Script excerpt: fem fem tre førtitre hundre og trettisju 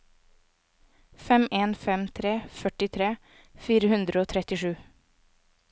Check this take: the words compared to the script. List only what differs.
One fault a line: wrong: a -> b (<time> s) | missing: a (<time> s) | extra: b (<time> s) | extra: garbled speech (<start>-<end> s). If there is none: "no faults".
extra: en (1.6 s)
extra: fire (3.7 s)